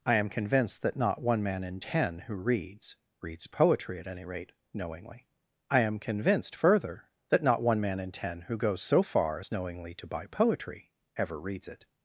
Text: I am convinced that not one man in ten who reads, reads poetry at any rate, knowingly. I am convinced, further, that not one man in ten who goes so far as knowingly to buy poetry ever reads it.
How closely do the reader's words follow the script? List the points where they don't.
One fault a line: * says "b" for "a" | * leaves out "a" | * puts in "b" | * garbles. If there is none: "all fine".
all fine